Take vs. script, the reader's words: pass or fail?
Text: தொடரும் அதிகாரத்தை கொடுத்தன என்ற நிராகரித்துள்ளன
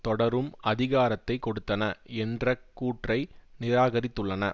fail